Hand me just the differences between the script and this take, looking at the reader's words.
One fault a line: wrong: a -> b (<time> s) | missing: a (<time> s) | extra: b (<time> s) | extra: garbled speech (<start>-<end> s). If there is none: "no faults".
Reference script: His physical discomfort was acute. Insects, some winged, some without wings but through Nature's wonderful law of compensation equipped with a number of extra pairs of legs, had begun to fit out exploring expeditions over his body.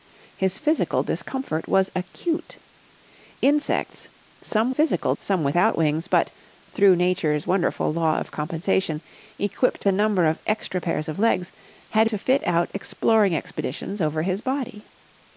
wrong: winged -> physical (4.7 s)
missing: with (9.8 s)
missing: begun (12.1 s)